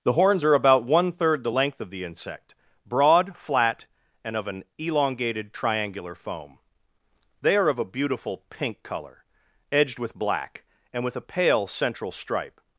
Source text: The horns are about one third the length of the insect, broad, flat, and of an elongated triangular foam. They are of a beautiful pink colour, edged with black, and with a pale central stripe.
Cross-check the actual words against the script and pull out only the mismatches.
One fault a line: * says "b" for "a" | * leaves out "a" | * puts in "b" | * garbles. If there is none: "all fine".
all fine